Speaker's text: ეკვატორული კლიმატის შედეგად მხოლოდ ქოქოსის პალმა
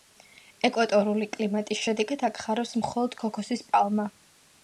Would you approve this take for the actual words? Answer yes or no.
no